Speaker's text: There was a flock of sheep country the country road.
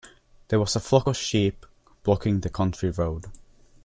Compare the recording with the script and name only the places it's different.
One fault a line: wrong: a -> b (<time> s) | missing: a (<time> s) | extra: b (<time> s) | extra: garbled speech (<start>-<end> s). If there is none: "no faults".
wrong: country -> blocking (2.0 s)